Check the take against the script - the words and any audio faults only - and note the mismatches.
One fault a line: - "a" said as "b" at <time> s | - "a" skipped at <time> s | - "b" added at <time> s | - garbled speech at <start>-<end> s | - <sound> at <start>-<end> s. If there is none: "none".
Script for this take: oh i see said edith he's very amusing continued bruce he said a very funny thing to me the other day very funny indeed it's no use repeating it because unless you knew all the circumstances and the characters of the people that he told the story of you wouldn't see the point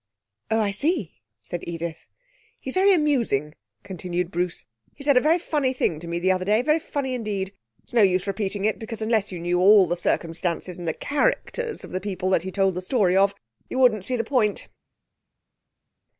none